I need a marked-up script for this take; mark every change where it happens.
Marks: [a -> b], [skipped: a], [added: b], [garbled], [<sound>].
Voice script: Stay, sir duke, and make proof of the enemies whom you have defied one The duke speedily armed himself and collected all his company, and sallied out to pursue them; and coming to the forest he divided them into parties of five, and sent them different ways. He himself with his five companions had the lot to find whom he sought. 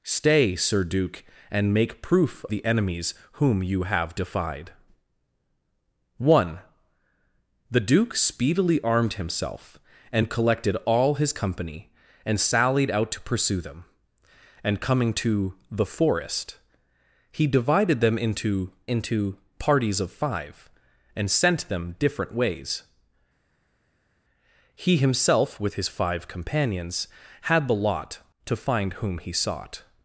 Stay, sir duke, and make proof [skipped: of] the enemies whom you have defied one The duke speedily armed himself and collected all his company, and sallied out to pursue them; and coming to the forest he divided them into [added: into] parties of five, and sent them different ways. He himself with his five companions had the lot to find whom he sought.